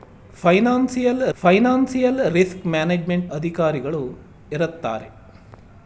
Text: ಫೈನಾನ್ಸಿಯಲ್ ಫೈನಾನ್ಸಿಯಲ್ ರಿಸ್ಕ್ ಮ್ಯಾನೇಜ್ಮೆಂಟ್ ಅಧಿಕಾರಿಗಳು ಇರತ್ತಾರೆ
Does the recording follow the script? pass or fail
pass